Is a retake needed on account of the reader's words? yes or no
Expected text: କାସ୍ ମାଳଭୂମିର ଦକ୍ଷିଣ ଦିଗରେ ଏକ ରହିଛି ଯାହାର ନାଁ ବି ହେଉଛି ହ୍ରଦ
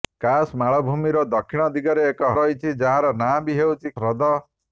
no